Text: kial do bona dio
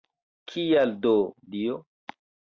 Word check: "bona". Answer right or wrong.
wrong